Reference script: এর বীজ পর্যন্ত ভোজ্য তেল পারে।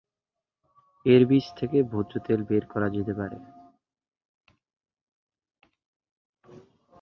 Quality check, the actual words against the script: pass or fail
fail